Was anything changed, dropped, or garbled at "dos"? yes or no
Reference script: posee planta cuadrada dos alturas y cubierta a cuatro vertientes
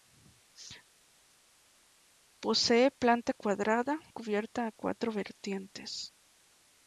yes